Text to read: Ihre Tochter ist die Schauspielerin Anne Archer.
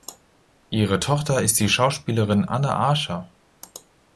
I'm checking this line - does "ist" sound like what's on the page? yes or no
yes